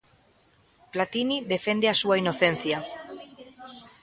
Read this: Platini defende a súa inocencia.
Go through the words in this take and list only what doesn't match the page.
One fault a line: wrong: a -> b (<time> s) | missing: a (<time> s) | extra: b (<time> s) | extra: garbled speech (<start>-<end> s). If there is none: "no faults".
no faults